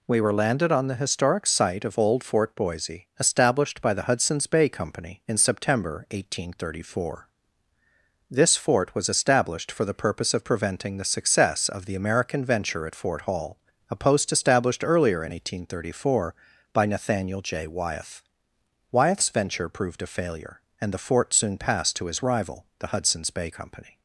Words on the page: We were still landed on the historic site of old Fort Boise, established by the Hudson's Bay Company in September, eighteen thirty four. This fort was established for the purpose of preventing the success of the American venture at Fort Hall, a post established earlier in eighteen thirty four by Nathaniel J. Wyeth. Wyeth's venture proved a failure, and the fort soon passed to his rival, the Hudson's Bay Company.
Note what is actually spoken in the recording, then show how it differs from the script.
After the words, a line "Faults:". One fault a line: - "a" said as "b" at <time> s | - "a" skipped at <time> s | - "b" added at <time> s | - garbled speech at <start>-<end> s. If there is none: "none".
We were landed on the historic site of old Fort Boise, established by the Hudson's Bay Company in September, eighteen thirty four. This fort was established for the purpose of preventing the success of the American venture at Fort Hall, a post established earlier in eighteen thirty four by Nathaniel J. Wyeth. Wyeth's venture proved a failure, and the fort soon passed to his rival, the Hudson's Bay Company.
Faults:
- "still" skipped at 0.3 s